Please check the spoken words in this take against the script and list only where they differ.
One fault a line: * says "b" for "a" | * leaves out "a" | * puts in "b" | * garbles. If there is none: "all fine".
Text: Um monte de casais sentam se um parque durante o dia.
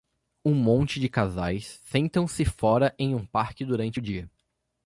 * puts in "fora em"